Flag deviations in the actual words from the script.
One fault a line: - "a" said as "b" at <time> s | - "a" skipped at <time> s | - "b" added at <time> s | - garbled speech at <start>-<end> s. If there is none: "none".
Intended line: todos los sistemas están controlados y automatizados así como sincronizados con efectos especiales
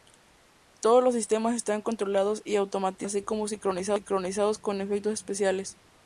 none